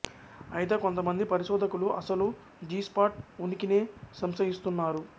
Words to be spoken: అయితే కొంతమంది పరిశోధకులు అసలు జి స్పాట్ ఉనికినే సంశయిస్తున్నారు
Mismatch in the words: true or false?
false